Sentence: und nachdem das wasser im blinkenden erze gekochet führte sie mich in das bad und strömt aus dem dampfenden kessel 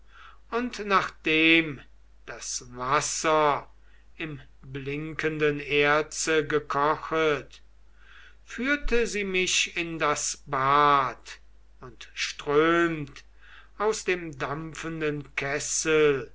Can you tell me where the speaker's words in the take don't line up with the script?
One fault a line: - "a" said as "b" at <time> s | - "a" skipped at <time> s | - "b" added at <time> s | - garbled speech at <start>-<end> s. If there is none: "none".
none